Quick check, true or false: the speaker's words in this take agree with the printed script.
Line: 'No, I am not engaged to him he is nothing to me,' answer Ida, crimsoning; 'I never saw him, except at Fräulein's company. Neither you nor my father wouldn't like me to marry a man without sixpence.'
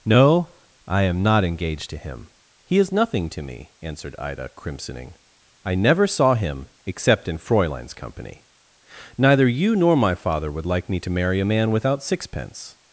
false